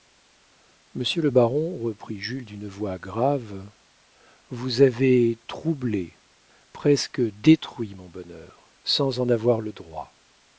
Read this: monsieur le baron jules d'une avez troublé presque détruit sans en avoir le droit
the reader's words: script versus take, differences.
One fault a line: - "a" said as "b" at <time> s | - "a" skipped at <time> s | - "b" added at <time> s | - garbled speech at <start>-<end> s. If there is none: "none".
- "reprit" added at 1.8 s
- "voix grave vous" added at 2.7 s
- "mon bonheur" added at 8.0 s